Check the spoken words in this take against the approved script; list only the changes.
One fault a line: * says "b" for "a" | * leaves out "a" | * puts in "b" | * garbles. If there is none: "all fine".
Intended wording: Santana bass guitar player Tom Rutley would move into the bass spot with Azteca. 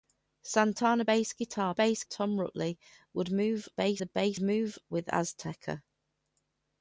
* says "bass" for "player"
* says "bass" for "into"
* says "move" for "spot"